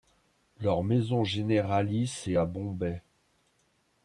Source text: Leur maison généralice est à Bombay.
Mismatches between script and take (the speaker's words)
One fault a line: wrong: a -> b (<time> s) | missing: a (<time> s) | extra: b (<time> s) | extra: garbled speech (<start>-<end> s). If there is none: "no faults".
no faults